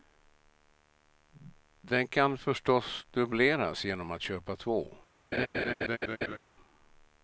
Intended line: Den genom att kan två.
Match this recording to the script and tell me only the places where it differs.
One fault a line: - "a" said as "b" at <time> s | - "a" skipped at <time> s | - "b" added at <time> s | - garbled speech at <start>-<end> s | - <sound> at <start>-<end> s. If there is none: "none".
- "kan förstås dubbleras" added at 2.1 s
- "kan" said as "köpa" at 4.2 s
- laugh at 5.3-6.4 s